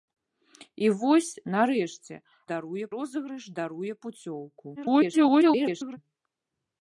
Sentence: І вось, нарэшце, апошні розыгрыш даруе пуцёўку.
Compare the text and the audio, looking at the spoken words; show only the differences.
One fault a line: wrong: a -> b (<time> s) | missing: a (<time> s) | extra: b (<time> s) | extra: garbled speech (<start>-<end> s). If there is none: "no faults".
wrong: апошні -> даруе (2.5 s)
extra: garbled speech (4.8-6.0 s)